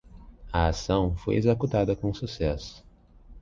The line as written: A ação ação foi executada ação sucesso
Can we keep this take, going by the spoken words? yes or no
no